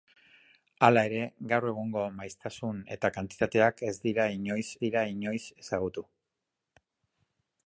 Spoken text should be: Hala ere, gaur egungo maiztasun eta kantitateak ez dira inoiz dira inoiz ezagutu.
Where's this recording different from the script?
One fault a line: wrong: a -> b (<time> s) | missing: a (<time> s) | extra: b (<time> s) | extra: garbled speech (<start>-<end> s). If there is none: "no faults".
no faults